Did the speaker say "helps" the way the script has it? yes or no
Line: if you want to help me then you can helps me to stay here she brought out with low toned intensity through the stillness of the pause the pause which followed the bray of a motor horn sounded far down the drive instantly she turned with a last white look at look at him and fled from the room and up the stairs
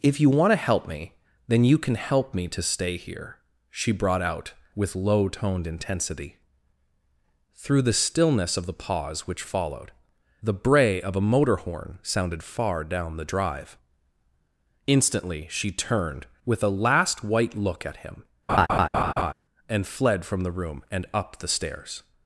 no